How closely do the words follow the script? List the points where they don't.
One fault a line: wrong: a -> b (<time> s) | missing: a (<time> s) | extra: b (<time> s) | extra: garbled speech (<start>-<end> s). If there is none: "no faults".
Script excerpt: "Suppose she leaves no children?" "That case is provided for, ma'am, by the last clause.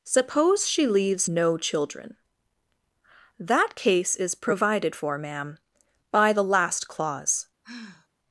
no faults